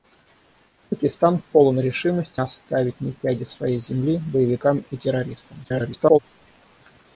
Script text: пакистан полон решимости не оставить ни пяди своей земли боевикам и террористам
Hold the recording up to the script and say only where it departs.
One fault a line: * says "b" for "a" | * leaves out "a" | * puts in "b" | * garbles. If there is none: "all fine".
* leaves out "не"
* garbles